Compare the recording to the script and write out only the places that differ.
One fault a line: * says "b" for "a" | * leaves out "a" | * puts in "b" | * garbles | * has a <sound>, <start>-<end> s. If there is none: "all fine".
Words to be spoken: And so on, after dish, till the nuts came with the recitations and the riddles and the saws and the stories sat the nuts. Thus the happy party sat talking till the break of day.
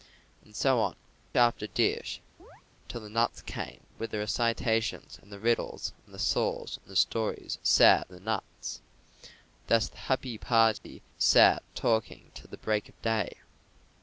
* has a chirp, 2.4-2.6 s
* has a dropout, 10.8-10.8 s